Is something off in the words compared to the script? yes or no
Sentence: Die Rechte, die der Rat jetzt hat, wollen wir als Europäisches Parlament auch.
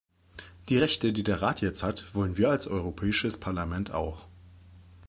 no